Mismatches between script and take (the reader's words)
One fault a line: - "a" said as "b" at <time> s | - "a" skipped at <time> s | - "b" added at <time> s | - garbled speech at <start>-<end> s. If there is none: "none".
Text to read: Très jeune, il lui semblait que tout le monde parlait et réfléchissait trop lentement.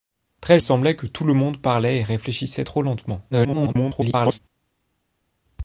- "jeune il lui" skipped at 0.6 s
- garbled speech at 3.3-4.4 s